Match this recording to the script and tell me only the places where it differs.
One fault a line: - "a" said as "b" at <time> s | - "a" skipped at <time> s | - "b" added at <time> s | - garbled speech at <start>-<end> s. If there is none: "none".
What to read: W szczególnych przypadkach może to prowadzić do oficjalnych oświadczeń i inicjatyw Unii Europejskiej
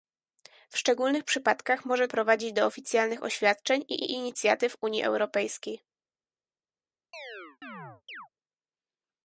- "to" skipped at 2.1 s
- "i" added at 4.0 s